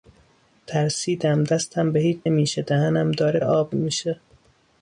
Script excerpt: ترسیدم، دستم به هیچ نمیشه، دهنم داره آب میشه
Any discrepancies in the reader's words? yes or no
no